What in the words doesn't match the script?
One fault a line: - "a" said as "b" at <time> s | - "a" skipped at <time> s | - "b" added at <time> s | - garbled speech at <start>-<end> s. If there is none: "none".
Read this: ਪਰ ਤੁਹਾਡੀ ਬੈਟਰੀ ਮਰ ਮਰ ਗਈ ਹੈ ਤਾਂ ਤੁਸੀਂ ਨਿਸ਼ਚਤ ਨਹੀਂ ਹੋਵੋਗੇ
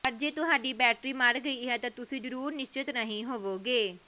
- "ਜੇ" added at 0.1 s
- "ਮਰ" skipped at 1.4 s
- "ਜ਼ਰੂਰ" added at 2.2 s